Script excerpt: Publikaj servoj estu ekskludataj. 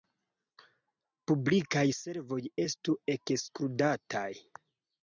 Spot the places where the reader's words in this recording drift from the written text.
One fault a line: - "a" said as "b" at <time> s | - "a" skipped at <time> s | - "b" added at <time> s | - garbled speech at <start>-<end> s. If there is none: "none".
none